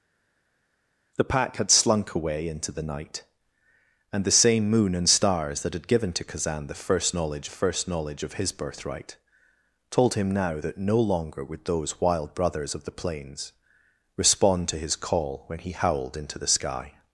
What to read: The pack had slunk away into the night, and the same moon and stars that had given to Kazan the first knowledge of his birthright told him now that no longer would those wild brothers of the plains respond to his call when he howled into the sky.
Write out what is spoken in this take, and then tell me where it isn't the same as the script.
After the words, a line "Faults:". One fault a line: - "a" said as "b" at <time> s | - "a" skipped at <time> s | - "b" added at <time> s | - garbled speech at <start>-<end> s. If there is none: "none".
The pack had slunk away into the night, and the same moon and stars that had given to Kazan the first knowledge first knowledge of his birthright told him now that no longer would those wild brothers of the plains respond to his call when he howled into the sky.
Faults:
- "first knowledge" added at 7.5 s